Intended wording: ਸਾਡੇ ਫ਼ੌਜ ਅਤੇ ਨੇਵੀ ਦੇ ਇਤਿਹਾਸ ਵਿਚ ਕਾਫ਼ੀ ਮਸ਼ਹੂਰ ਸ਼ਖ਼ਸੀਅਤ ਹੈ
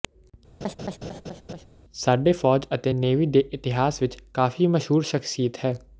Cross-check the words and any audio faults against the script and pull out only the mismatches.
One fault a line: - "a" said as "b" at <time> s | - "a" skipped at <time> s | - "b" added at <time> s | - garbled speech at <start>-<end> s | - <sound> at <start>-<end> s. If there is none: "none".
- laugh at 0.6-1.7 s